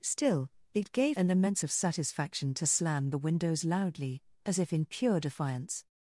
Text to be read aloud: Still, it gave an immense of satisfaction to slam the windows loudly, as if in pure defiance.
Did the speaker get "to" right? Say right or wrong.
right